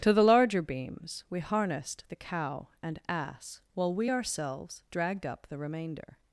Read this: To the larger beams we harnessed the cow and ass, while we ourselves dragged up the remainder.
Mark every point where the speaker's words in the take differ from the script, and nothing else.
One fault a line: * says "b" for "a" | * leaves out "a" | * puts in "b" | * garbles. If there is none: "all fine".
all fine